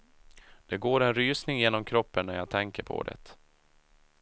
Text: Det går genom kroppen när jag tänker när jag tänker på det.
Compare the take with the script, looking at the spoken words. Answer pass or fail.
fail